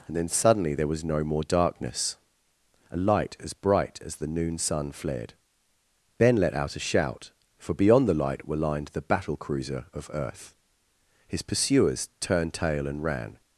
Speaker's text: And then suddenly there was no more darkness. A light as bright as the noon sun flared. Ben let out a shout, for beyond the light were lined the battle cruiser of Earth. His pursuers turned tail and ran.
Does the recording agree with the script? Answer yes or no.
yes